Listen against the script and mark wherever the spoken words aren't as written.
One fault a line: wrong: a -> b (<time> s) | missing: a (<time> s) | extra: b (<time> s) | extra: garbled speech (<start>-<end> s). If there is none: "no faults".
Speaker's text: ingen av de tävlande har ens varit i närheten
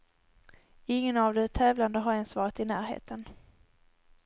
no faults